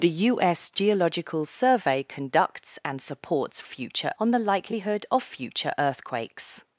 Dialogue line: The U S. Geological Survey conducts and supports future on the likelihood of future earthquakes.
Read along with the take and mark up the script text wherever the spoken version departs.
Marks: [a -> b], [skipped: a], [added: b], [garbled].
The U S. Geological Survey conducts and supports future on the likelihood of future earthquakes.